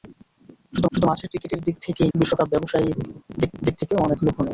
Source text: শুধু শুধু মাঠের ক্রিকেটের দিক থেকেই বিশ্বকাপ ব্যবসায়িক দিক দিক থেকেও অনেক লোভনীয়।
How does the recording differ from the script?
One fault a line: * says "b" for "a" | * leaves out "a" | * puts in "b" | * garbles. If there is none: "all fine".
all fine